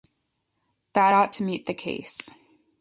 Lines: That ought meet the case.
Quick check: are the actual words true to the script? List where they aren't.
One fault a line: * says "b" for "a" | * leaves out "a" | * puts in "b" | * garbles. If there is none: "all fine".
* puts in "to"